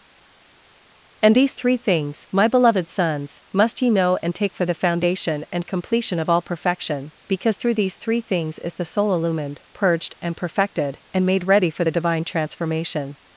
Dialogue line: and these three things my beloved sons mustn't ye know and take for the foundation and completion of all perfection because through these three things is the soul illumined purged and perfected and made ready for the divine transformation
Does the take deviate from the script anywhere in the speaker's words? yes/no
yes